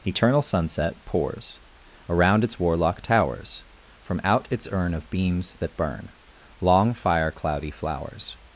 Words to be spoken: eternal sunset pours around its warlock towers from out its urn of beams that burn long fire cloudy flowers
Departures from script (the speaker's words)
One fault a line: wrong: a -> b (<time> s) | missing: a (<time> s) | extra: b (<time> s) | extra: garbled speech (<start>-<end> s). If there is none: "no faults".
no faults